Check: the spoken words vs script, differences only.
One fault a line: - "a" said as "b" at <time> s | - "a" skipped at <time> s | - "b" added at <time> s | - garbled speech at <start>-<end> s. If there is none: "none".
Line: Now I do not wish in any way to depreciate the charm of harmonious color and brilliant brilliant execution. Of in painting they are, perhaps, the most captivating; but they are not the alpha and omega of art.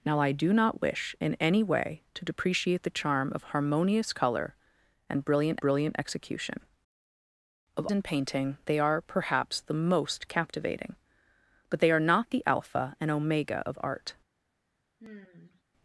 none